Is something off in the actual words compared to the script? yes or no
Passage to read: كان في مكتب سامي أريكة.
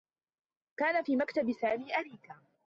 no